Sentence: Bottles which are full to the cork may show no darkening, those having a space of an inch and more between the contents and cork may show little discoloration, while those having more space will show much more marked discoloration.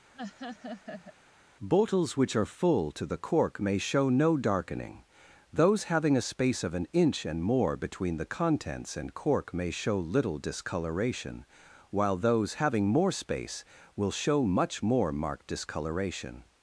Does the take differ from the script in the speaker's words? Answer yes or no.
no